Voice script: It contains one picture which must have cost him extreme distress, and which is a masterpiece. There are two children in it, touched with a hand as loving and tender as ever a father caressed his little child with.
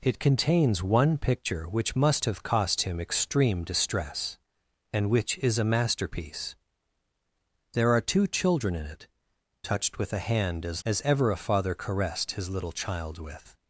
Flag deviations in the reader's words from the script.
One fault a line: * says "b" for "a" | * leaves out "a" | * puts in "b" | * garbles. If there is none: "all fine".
* leaves out "loving and tender"